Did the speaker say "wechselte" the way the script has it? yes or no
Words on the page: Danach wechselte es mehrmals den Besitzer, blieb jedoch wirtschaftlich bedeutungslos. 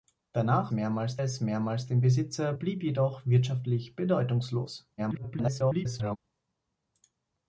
no